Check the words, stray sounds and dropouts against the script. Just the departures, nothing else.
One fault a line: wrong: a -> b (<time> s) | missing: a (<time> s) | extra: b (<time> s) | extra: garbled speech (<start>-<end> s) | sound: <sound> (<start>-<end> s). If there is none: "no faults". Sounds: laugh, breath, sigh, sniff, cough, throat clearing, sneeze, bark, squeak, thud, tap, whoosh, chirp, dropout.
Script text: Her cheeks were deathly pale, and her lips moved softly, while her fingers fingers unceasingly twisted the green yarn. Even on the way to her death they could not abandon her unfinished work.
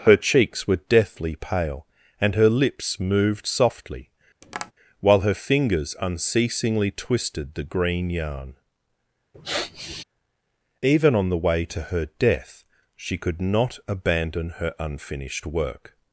sound: tap (4.4-4.7 s)
missing: fingers (5.9 s)
sound: sniff (9.3-10.0 s)
wrong: they -> she (13.0 s)